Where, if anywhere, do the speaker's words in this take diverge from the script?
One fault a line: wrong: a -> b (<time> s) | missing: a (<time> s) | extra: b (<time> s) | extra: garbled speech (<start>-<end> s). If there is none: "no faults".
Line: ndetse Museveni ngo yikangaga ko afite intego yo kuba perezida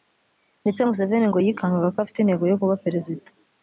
no faults